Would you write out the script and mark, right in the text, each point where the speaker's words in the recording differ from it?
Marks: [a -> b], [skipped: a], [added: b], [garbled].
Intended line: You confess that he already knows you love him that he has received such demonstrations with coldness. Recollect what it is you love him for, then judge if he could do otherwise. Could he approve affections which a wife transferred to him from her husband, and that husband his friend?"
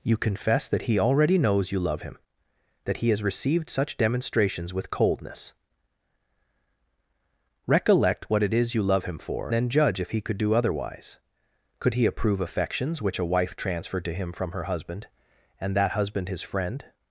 You confess that he already knows you love him that he has received such demonstrations with coldness. Recollect what it is you love him for, then judge if he could do otherwise. Could he approve affections which a wife transferred to him from her husband, and that husband his friend?"